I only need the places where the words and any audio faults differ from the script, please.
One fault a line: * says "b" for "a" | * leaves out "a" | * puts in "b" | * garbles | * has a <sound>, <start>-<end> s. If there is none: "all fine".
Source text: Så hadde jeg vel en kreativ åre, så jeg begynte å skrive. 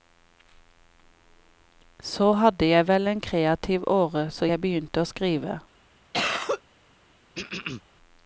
* has a cough, 6.1-6.6 s
* has a throat clearing, 7.4-7.8 s